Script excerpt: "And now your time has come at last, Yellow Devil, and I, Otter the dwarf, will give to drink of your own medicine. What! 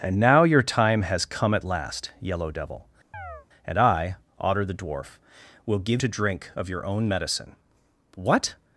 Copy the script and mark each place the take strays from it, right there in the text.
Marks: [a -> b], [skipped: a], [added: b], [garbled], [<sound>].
"And now your time has come at last, Yellow Devil, [chirp] and I, Otter the dwarf, will give to drink of your own medicine. What!